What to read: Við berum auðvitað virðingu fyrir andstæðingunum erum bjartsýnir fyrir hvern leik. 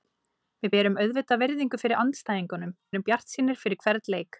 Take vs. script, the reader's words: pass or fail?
pass